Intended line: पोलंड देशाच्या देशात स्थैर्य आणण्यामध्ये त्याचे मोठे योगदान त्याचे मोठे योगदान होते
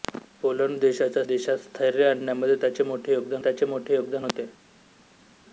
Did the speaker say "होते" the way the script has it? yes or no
yes